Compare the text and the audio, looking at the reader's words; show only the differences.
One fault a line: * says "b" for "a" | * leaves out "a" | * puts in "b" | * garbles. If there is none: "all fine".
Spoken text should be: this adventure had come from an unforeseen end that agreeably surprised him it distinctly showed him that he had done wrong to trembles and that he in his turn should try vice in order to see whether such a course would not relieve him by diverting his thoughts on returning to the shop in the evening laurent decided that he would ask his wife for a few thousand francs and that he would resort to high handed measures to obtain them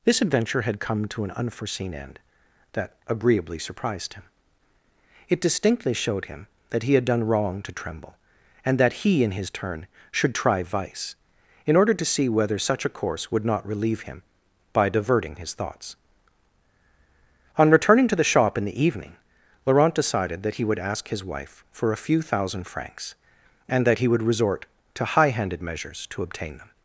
* says "to" for "from"
* says "tremble" for "trembles"